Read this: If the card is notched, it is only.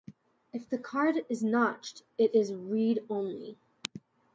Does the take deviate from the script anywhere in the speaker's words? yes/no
yes